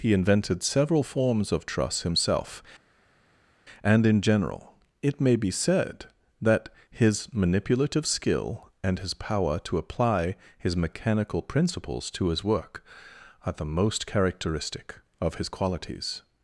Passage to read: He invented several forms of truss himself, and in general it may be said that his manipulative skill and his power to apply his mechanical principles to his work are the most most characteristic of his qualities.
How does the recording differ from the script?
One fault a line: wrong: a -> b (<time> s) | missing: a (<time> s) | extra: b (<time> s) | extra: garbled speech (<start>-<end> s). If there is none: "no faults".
missing: most (14.1 s)